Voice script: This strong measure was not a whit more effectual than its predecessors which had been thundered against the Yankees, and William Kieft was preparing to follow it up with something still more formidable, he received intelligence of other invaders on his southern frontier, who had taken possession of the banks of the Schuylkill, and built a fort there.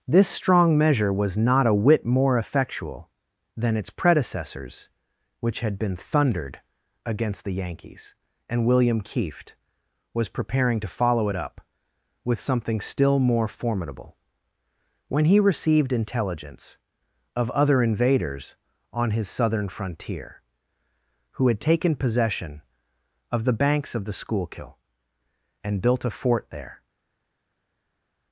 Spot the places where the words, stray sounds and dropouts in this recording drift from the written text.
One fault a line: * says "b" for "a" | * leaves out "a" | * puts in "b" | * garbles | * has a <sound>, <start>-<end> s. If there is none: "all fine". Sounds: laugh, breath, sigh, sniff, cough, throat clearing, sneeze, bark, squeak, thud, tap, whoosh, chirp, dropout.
* puts in "when"